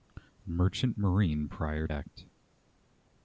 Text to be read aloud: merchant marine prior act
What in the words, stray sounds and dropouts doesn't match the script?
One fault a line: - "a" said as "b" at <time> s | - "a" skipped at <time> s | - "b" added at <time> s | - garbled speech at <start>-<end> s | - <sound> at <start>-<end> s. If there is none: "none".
none